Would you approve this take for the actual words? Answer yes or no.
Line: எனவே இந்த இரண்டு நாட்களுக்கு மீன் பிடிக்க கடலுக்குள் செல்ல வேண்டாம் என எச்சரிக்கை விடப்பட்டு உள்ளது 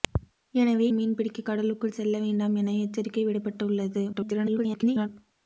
no